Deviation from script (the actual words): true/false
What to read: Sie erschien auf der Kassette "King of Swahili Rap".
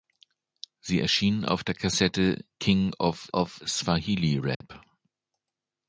true